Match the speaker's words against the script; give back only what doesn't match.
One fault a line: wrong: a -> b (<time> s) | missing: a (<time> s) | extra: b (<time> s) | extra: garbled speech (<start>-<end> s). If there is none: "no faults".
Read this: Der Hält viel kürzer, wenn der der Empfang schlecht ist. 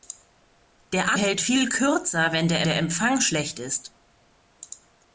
no faults